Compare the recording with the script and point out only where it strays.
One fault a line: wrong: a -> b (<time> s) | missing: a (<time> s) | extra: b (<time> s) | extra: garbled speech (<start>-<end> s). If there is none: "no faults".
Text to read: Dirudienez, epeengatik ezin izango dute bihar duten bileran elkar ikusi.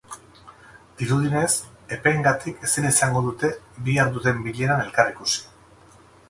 no faults